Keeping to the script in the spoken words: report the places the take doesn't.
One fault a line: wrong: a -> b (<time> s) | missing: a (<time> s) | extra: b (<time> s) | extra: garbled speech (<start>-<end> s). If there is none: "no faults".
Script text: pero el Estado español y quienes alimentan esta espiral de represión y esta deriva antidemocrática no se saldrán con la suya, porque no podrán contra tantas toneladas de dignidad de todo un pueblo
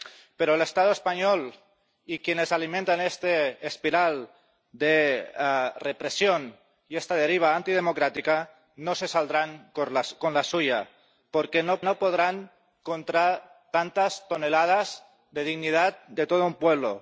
extra: no (11.8 s)